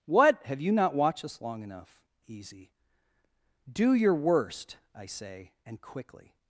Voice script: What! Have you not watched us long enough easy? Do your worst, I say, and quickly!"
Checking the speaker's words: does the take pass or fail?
pass